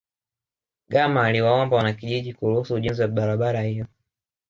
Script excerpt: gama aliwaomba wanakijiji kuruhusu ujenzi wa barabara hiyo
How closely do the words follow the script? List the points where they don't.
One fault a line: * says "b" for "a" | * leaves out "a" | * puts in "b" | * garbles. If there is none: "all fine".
all fine